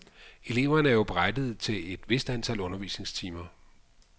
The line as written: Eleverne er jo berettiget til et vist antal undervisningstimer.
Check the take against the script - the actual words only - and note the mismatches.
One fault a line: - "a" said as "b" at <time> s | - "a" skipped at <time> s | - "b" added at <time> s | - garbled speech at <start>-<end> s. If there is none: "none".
none